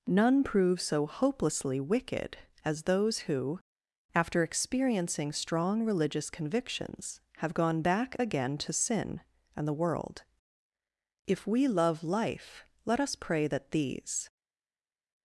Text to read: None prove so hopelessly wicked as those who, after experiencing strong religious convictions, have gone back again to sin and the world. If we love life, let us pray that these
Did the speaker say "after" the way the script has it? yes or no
yes